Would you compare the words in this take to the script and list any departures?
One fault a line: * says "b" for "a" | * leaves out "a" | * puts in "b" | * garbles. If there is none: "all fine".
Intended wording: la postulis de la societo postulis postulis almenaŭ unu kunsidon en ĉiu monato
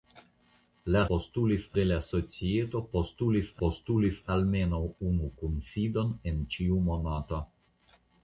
all fine